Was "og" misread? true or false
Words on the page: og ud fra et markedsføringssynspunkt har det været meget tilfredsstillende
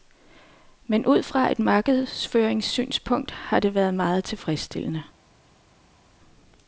true